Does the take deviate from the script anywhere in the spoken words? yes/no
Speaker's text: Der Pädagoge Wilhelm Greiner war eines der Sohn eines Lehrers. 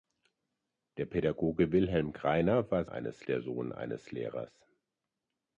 no